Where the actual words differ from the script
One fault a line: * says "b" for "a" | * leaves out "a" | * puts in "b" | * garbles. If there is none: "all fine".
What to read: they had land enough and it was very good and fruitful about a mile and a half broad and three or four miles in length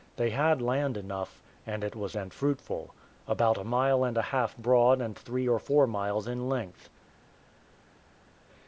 * leaves out "very good"